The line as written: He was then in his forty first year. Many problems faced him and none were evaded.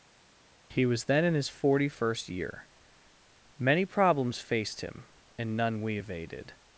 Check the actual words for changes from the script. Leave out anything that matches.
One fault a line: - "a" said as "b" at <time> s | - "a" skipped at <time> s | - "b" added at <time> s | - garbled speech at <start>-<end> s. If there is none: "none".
- "were" said as "we" at 5.8 s